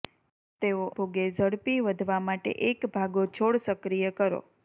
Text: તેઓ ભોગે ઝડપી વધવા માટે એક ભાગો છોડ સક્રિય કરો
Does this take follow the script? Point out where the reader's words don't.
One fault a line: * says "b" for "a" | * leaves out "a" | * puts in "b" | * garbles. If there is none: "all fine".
all fine